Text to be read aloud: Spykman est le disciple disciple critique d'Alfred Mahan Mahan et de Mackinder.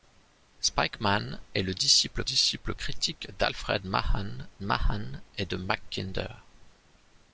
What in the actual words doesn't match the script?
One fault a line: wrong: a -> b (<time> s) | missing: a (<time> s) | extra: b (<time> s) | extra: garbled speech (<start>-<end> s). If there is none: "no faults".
no faults